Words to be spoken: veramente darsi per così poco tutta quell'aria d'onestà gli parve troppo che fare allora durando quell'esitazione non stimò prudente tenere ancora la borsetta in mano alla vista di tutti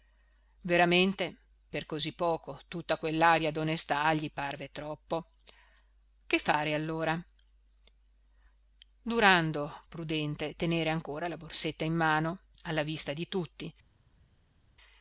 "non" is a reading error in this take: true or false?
true